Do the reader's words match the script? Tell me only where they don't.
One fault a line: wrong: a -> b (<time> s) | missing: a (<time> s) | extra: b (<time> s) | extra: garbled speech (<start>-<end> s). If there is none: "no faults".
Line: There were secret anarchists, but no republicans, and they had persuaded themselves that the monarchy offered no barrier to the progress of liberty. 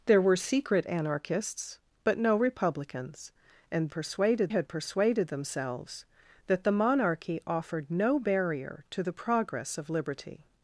wrong: they -> persuaded (3.9 s)